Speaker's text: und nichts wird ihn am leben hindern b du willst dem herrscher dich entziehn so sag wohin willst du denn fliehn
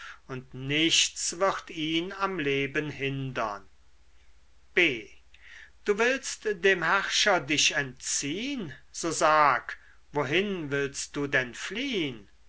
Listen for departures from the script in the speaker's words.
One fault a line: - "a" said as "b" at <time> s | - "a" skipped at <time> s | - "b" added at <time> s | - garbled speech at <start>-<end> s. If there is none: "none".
none